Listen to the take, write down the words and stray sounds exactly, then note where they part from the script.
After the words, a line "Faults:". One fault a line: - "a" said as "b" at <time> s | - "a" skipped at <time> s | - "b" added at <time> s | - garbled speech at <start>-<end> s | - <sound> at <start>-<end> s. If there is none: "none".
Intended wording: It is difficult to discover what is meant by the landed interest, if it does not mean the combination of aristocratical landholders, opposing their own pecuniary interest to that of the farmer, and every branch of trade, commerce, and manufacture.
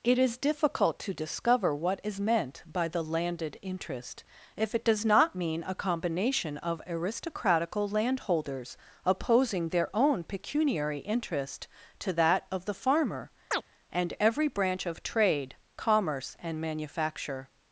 It is difficult to discover what is meant by the landed interest, if it does not mean a combination of aristocratical landholders, opposing their own pecuniary interest to that of the farmer, and every branch of trade, commerce, and manufacture.
Faults:
- "the" said as "a" at 5.6 s
- chirp at 13.5-13.6 s